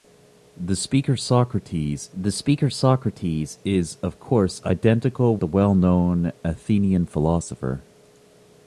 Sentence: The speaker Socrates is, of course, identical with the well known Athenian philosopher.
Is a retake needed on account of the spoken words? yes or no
yes